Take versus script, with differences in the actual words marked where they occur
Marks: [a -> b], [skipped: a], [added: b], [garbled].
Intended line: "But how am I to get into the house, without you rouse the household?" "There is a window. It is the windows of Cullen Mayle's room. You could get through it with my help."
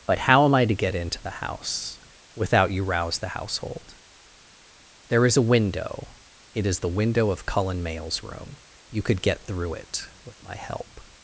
"But how am I to get into the house, without you rouse the household?" "There is a window. It is the [windows -> window] of Cullen Mayle's room. You could get through it with my help."